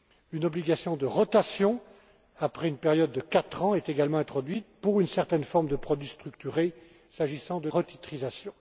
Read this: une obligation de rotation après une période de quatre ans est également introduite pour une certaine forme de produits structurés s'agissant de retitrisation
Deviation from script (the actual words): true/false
false